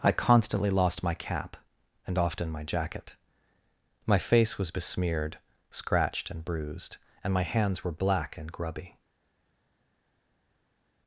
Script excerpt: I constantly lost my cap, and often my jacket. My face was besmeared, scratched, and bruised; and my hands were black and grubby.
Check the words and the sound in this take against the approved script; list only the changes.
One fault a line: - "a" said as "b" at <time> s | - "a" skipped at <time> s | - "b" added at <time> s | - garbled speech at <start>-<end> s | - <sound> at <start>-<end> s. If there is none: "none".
none